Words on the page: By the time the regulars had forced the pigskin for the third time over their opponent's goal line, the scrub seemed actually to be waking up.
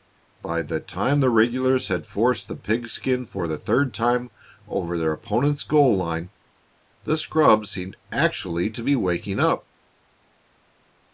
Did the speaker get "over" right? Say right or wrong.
right